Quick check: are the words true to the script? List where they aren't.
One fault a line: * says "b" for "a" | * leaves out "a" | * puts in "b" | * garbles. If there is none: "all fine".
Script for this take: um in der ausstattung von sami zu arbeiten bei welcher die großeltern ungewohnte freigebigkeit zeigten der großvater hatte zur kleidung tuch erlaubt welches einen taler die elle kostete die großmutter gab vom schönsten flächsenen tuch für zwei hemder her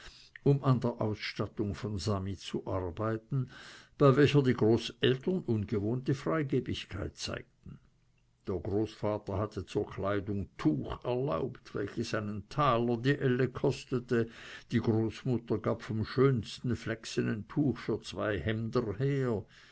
* says "an" for "in"